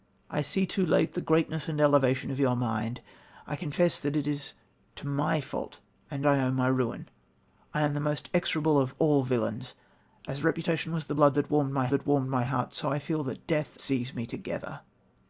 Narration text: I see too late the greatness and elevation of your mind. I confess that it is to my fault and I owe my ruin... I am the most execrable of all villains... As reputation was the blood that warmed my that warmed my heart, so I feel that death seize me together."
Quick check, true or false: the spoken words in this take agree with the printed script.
true